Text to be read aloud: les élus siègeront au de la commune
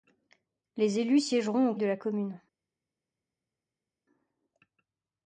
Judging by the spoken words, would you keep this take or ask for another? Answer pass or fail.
pass